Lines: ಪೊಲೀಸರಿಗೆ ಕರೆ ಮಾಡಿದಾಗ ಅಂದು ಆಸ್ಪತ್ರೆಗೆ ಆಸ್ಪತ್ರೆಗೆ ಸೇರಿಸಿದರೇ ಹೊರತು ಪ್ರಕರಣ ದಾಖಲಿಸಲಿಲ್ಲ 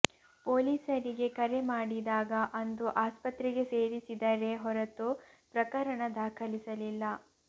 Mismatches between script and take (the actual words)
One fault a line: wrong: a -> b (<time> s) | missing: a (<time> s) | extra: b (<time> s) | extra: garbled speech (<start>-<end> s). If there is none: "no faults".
missing: ಆಸ್ಪತ್ರೆಗೆ (3.6 s)